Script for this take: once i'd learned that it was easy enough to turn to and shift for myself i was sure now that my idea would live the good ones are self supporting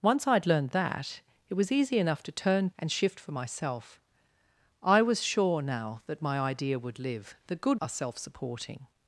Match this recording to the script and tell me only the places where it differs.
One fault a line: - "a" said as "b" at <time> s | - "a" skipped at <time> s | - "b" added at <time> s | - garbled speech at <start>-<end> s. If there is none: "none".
- "to" skipped at 2.7 s
- "ones" skipped at 7.8 s